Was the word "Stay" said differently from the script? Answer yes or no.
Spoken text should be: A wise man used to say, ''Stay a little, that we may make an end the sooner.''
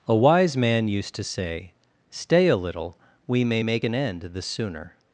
no